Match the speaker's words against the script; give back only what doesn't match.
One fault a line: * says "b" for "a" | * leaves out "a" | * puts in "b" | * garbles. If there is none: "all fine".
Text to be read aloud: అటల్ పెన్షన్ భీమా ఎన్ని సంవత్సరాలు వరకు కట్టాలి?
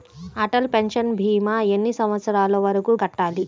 all fine